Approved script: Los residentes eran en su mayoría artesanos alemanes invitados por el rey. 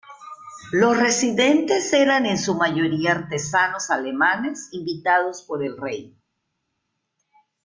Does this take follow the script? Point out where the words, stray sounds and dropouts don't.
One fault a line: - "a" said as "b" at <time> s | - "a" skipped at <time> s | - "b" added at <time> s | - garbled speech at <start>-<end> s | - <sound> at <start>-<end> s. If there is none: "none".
none